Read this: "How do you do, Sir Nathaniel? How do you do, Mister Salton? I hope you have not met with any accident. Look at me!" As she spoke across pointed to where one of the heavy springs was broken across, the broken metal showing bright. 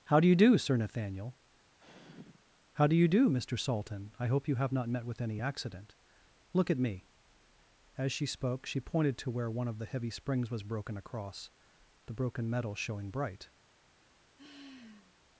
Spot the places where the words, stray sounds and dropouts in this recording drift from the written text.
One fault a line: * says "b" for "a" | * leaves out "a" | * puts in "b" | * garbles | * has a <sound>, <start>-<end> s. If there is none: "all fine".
* has a sigh, 1.8-2.4 s
* says "she" for "across"
* has a sigh, 14.4-15.2 s